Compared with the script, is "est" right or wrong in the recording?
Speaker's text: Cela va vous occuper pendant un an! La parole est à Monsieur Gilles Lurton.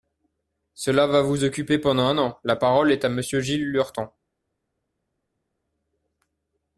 right